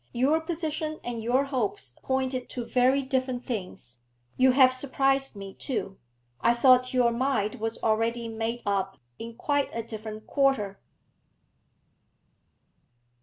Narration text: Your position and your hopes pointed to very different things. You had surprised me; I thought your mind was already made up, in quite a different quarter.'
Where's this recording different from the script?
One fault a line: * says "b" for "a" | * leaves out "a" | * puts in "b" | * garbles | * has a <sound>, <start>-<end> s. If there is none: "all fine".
* says "have" for "had"
* puts in "too"